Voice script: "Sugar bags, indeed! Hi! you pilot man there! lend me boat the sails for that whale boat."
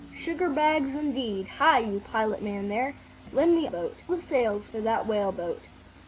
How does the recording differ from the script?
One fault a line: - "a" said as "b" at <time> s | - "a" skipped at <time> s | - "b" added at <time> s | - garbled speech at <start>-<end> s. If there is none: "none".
none